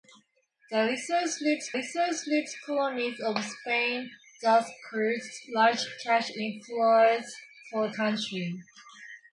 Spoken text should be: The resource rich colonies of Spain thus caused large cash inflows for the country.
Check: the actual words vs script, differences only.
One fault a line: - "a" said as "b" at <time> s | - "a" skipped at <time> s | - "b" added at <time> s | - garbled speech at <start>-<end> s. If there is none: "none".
- "resource rich" added at 1.7 s
- "the" skipped at 7.9 s